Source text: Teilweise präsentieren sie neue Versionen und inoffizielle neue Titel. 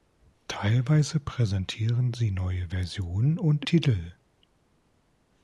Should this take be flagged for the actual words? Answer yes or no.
yes